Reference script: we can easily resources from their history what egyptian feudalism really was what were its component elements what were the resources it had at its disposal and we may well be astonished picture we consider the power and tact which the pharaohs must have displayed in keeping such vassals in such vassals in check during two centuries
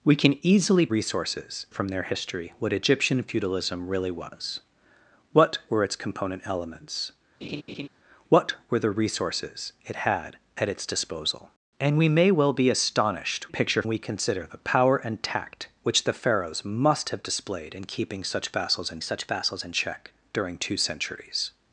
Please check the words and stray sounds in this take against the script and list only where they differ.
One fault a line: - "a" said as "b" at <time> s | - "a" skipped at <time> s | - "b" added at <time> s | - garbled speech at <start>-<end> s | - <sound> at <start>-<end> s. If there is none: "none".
- laugh at 7.4-7.9 s